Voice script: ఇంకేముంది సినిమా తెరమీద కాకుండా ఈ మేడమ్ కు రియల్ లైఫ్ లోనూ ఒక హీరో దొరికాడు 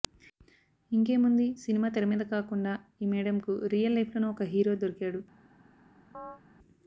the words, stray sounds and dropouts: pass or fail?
fail